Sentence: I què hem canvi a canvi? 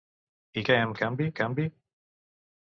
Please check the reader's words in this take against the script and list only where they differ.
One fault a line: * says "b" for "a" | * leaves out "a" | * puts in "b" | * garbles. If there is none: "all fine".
all fine